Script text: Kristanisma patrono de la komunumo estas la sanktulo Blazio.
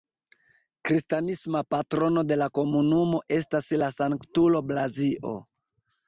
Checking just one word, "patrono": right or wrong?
right